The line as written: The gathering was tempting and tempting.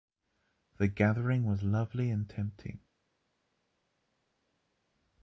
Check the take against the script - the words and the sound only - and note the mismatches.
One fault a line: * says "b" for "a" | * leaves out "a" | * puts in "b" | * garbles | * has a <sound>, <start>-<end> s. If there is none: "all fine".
* says "lovely" for "tempting"